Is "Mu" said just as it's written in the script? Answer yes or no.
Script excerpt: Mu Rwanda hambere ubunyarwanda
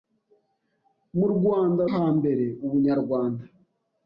yes